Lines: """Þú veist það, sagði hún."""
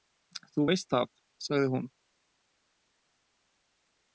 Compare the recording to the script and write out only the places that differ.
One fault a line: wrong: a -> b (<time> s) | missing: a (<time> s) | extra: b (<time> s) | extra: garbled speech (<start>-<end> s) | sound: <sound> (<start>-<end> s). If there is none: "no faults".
no faults